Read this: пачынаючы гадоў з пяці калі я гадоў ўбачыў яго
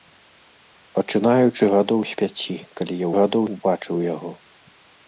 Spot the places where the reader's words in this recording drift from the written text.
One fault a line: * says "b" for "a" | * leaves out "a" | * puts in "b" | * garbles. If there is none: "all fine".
all fine